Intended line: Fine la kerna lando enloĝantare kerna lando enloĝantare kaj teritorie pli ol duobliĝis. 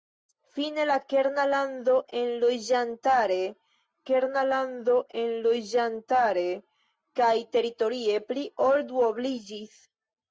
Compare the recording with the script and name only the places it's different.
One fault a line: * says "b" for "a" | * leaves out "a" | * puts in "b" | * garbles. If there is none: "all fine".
all fine